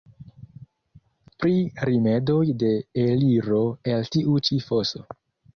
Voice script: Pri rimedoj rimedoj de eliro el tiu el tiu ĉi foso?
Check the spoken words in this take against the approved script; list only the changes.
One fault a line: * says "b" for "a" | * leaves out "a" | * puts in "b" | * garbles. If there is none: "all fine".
* leaves out "rimedoj"
* leaves out "el tiu"